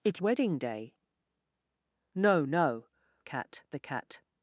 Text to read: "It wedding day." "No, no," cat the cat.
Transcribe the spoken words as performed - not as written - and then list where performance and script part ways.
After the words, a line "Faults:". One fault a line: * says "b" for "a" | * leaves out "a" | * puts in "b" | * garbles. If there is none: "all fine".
"It wedding day." "No, no," cat the cat.
Faults:
all fine